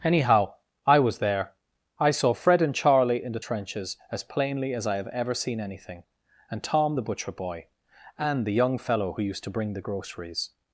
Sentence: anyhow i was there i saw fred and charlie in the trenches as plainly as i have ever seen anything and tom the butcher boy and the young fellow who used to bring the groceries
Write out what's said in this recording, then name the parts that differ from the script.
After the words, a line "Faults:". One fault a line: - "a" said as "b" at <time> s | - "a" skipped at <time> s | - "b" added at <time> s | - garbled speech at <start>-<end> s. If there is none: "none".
anyhow i was there i saw fred and charlie in the trenches as plainly as i have ever seen anything and tom the butcher boy and the young fellow who used to bring the groceries
Faults:
none